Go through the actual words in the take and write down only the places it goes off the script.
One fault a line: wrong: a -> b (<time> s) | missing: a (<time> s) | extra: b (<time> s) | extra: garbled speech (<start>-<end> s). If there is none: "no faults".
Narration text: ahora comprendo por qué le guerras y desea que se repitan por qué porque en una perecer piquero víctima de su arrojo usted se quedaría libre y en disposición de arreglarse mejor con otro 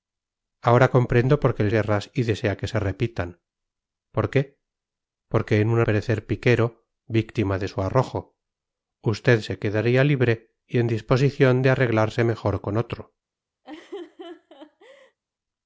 no faults